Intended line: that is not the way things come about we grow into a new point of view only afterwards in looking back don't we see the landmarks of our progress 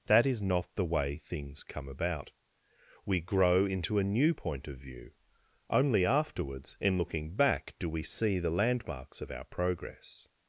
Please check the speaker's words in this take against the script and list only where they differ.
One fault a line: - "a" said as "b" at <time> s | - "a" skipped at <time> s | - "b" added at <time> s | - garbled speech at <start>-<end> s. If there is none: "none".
- "don't" said as "do" at 7.8 s